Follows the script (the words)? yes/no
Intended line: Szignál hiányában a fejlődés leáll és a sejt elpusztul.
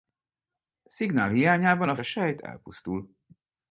no